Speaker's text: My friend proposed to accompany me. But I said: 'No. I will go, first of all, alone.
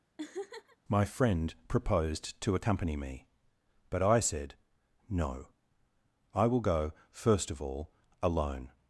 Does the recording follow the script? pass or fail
pass